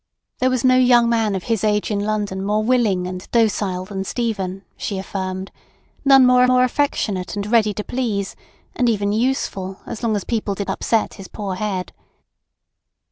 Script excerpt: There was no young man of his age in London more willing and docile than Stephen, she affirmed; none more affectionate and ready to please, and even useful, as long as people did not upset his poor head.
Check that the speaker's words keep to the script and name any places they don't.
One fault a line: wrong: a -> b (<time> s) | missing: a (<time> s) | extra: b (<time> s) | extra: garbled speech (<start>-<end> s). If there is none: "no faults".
extra: more (6.5 s)
missing: not (10.7 s)